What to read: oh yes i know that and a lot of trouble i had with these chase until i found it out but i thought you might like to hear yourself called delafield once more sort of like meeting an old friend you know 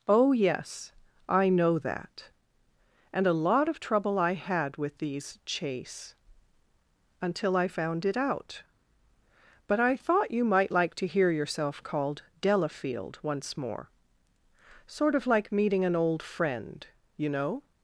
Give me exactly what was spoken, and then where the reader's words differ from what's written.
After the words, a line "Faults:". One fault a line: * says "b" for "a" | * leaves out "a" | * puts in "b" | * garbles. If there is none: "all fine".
oh yes i know that and a lot of trouble i had with these chase until i found it out but i thought you might like to hear yourself called delafield once more sort of like meeting an old friend you know
Faults:
all fine